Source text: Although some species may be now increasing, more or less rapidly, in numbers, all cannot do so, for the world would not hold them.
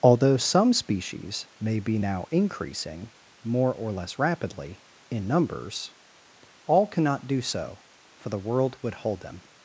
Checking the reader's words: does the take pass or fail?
fail